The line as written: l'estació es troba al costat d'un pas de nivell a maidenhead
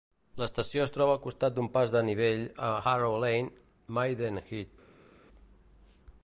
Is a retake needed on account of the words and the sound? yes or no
yes